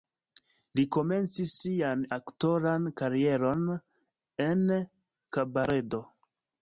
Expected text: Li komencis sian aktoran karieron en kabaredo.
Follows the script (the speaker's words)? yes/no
yes